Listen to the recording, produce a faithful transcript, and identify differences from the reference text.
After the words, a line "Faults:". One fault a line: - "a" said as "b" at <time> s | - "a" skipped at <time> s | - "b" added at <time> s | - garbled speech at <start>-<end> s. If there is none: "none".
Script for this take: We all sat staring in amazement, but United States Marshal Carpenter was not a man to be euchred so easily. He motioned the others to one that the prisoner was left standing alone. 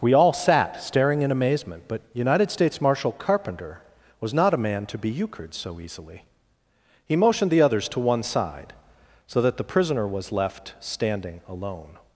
We all sat staring in amazement, but United States Marshal Carpenter was not a man to be euchred so easily. He motioned the others to one side, so that the prisoner was left standing alone.
Faults:
- "side so" added at 8.2 s